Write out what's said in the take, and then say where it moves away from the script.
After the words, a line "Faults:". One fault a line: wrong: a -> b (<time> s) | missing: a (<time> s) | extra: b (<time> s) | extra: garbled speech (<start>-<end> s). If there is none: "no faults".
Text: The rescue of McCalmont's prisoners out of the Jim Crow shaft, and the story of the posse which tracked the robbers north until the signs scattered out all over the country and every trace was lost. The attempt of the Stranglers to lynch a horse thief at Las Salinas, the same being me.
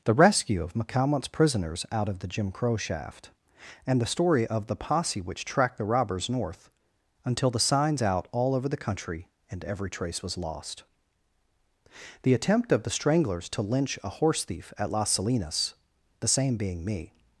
The rescue of McCalmont's prisoners out of the Jim Crow shaft, and the story of the posse which tracked the robbers north until the signs out all over the country and every trace was lost. The attempt of the Stranglers to lynch a horse thief at Las Salinas, the same being me.
Faults:
missing: scattered (8.0 s)